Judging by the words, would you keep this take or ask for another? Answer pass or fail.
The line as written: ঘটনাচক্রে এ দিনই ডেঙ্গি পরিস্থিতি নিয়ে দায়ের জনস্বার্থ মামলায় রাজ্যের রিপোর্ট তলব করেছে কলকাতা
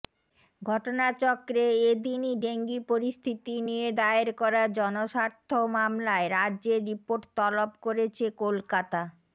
fail